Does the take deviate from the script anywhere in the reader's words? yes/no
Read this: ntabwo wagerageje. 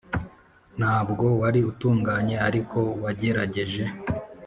yes